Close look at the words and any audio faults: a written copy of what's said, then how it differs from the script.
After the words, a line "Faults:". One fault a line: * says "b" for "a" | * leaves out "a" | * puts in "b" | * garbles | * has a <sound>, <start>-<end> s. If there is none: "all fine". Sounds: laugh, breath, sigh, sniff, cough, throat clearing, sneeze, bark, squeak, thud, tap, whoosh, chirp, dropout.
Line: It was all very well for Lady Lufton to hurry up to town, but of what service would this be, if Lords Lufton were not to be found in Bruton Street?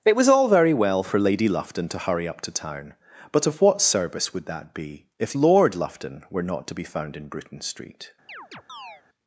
It was all very well for Lady Lufton to hurry up to town, but of what service would that be, if Lord Lufton were not to be found in Bruton Street?
Faults:
* says "that" for "this"
* says "Lord" for "Lords"
* has a chirp, 8.3-9.0 s